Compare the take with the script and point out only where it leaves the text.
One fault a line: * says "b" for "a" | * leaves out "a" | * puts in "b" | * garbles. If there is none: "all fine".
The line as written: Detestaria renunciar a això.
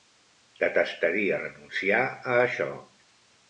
all fine